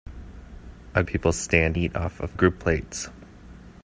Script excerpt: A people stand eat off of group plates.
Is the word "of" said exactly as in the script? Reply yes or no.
yes